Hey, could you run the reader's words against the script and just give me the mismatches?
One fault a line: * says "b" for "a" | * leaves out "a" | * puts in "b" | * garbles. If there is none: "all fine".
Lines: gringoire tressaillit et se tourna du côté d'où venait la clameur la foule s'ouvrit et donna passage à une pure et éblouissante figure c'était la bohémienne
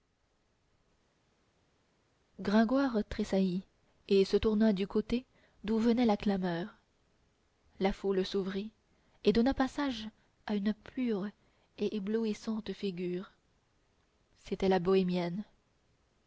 all fine